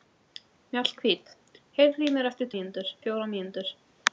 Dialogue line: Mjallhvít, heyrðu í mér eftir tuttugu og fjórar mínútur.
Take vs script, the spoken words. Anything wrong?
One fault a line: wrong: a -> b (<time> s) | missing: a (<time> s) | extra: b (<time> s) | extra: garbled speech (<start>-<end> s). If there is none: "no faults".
wrong: tuttugu -> mínútur (2.5 s)